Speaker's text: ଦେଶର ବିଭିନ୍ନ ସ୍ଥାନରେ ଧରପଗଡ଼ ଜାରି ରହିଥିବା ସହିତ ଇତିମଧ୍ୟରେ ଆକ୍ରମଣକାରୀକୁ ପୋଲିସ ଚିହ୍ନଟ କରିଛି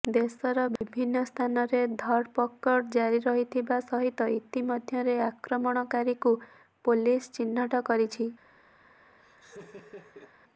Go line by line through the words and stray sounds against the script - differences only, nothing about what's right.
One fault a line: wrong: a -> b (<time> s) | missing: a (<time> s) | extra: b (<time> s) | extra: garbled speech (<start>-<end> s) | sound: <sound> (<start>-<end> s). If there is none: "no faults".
sound: dropout (0.8-0.8 s)
sound: laugh (9.2-10.3 s)